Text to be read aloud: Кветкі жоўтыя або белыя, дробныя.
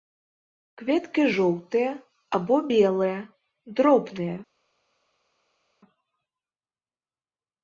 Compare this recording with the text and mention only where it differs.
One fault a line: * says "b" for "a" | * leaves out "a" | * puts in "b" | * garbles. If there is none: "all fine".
all fine